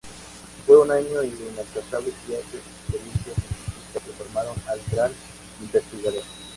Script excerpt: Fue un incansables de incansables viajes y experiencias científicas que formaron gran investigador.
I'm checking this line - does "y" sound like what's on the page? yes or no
yes